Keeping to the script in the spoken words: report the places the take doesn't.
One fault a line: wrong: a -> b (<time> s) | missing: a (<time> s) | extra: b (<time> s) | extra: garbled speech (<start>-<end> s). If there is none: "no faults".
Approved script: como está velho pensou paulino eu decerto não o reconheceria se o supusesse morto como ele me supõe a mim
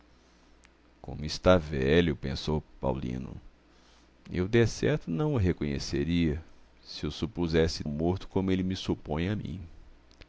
no faults